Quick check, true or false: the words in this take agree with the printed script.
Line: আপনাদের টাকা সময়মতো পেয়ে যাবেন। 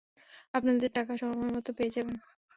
true